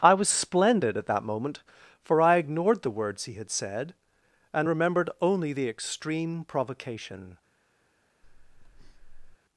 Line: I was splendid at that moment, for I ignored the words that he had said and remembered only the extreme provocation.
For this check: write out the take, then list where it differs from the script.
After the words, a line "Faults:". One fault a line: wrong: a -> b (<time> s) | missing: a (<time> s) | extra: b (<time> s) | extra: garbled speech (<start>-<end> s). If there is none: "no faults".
I was splendid at that moment, for I ignored the words he had said and remembered only the extreme provocation.
Faults:
missing: that (3.2 s)